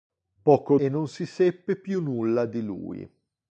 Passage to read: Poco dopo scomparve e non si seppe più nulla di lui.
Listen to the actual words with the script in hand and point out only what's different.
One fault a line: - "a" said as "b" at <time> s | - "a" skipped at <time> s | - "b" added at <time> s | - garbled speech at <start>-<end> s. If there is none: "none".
- "dopo scomparve" skipped at 0.8 s